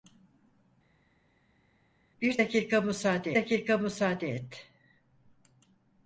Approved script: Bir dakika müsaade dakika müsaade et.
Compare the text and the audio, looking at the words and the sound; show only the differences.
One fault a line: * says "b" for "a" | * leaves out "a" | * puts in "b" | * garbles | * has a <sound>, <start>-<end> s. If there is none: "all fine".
all fine